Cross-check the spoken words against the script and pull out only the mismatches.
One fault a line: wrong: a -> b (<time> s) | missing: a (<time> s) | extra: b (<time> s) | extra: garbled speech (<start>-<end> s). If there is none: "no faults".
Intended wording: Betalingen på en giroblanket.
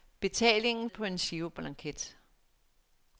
no faults